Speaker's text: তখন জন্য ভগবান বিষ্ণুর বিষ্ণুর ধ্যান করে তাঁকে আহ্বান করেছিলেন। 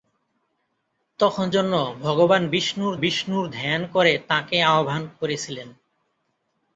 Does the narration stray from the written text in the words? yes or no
no